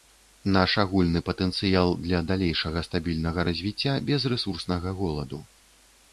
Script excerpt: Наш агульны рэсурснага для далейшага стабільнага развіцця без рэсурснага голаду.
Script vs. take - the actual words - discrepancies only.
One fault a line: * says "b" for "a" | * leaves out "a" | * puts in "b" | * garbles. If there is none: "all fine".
* says "патэнцыял" for "рэсурснага"